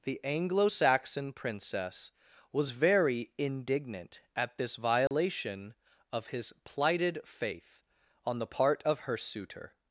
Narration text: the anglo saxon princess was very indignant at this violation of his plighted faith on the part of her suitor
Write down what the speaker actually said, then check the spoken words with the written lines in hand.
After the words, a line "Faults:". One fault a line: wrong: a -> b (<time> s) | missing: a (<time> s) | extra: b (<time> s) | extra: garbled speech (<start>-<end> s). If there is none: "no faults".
the anglo saxon princess was very indignant at this violation of his plighted faith on the part of her suitor
Faults:
no faults